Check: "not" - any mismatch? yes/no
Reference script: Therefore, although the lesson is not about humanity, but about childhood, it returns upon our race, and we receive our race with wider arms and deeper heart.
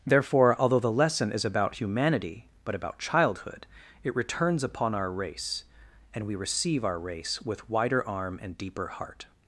yes